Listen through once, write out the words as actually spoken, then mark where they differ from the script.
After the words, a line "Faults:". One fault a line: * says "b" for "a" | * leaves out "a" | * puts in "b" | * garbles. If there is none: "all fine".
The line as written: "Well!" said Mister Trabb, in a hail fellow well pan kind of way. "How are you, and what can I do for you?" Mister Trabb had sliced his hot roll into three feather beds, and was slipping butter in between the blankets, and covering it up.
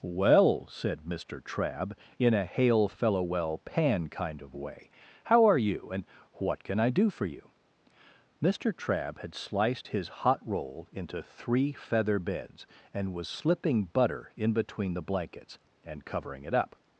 "Well!" said Mister Trabb, in a hail fellow well pan kind of way. "How are you, and what can I do for you?" Mister Trabb had sliced his hot roll into three feather beds, and was slipping butter in between the blankets, and covering it up.
Faults:
all fine